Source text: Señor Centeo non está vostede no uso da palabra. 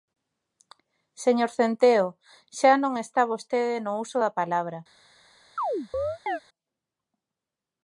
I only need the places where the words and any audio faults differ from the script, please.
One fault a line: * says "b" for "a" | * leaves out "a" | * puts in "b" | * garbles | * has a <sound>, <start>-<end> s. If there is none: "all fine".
* puts in "xa"
* has a chirp, 5.6-6.4 s